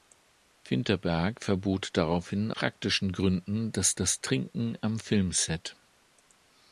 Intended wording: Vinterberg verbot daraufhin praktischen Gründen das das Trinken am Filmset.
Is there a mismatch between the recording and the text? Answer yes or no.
no